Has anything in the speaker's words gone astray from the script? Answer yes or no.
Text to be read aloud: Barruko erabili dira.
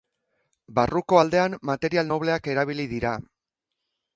yes